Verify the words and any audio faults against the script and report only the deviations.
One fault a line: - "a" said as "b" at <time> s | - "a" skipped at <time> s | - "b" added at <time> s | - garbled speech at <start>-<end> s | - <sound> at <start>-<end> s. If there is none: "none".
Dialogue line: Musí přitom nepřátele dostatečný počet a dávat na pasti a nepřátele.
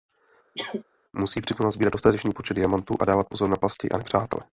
- sneeze at 0.5-0.8 s
- "nepřátele" said as "nasbírat" at 1.6 s
- "diamantů" added at 2.5 s
- "pozor" added at 3.3 s